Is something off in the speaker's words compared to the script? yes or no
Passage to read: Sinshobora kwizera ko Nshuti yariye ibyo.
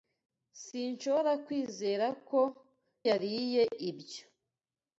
yes